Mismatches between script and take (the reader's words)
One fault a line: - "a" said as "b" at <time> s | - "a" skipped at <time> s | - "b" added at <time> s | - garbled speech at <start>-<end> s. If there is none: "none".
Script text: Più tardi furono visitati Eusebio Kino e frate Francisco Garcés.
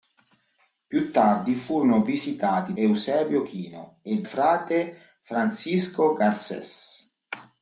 none